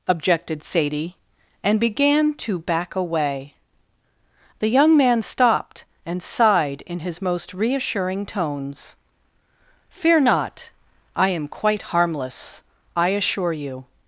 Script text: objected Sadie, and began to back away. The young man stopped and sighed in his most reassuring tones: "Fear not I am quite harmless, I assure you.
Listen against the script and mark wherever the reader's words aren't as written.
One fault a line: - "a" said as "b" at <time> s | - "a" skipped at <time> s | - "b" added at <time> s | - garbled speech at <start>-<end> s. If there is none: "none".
none